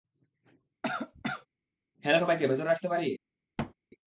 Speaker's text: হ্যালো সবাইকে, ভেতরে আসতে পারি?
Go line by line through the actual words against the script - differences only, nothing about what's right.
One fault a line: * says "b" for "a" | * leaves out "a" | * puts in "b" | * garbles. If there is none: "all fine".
all fine